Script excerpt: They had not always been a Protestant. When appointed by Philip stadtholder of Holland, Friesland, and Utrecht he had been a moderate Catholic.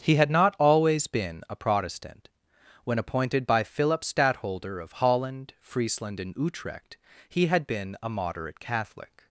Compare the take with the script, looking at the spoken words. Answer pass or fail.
fail